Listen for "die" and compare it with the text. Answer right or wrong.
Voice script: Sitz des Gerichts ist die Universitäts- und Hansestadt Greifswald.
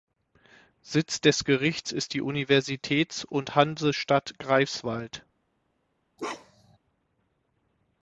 right